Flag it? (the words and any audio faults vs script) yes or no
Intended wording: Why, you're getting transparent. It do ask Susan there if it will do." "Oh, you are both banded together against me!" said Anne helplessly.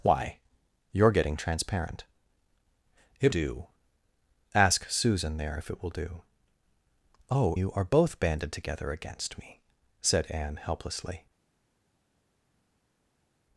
no